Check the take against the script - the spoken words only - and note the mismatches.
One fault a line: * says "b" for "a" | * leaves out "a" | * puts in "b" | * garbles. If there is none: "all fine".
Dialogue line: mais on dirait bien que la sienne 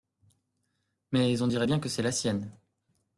* puts in "c'est"